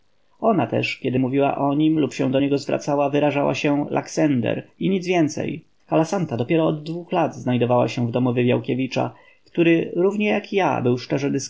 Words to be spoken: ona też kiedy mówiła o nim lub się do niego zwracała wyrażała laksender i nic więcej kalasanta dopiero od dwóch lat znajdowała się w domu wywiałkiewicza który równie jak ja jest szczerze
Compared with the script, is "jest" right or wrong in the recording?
wrong